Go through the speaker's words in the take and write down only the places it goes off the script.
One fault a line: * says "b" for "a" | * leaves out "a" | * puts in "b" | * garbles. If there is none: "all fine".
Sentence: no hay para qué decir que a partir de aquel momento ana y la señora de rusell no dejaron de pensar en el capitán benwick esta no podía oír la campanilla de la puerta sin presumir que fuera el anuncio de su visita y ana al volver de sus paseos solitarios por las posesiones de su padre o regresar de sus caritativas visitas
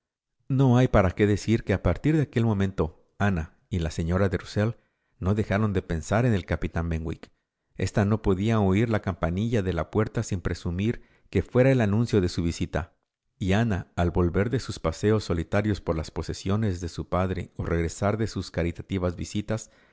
all fine